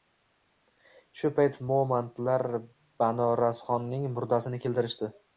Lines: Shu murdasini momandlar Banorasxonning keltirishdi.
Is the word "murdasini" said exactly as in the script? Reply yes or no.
no